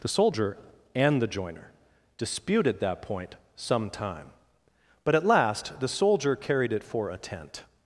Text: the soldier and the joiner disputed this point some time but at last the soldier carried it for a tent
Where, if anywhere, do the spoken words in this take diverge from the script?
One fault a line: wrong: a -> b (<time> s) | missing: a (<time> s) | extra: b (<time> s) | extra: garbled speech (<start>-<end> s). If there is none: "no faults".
wrong: this -> that (2.8 s)